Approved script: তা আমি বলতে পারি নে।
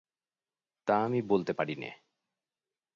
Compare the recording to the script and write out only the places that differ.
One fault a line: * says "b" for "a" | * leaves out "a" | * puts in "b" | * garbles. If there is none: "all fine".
all fine